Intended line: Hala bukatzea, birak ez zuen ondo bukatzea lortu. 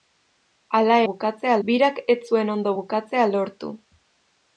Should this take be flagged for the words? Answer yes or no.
no